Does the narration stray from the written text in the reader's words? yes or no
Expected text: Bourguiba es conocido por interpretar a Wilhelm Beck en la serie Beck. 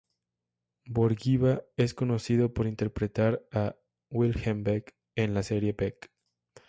no